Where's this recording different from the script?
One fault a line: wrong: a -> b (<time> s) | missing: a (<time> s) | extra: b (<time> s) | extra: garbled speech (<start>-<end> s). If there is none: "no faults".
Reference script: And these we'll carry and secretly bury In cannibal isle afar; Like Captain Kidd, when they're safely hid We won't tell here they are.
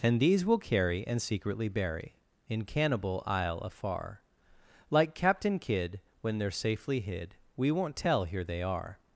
no faults